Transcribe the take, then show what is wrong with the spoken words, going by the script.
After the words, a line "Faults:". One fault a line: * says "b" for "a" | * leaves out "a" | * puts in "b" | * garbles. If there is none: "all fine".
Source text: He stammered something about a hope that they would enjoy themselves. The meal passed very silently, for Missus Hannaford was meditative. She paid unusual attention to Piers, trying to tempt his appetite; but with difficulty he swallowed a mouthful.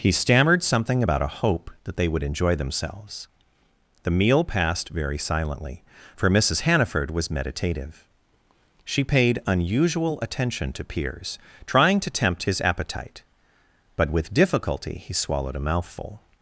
He stammered something about a hope that they would enjoy themselves. The meal passed very silently, for Missus Hannaford was meditative. She paid unusual attention to Piers, trying to tempt his appetite; but with difficulty he swallowed a mouthful.
Faults:
all fine